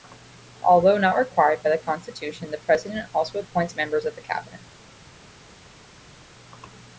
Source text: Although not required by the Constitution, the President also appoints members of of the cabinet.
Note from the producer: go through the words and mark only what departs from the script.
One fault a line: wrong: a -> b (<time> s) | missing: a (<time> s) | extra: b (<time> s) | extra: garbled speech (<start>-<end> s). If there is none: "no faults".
missing: of (4.2 s)